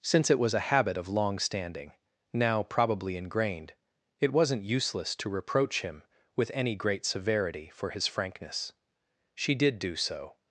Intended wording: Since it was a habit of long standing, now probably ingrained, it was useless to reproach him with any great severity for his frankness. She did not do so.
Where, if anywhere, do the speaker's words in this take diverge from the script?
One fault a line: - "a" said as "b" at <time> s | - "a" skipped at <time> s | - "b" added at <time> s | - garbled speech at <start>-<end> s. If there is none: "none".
- "was" said as "wasn't" at 4.3 s
- "not" skipped at 9.8 s